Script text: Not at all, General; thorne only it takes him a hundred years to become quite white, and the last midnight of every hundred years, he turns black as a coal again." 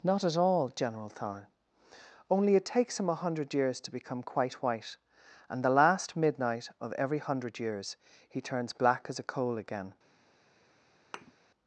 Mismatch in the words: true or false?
false